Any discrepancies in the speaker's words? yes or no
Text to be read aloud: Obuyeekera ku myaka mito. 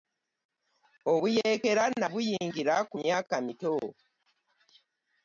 yes